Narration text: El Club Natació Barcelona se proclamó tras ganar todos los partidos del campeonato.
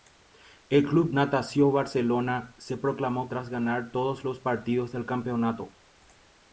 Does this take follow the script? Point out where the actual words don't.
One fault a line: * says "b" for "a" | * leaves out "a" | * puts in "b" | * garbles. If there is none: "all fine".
all fine